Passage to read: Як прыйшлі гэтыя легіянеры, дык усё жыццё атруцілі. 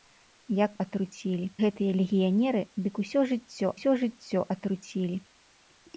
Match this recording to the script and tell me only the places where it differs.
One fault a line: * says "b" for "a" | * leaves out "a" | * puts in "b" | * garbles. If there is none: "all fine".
* says "атруцілі" for "прыйшлі"
* puts in "усё жыццё"